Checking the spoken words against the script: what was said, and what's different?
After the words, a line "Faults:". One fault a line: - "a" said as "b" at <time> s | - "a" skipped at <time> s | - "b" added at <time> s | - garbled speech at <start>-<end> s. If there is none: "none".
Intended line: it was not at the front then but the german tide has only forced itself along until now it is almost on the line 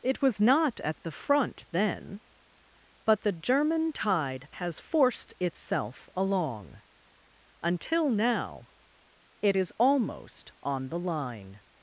it was not at the front then but the german tide has forced itself along until now it is almost on the line
Faults:
- "only" skipped at 4.8 s